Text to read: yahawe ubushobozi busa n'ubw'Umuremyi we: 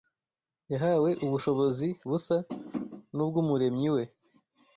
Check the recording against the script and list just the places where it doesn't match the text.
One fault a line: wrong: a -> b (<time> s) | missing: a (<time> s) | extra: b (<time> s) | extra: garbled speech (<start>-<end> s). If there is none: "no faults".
no faults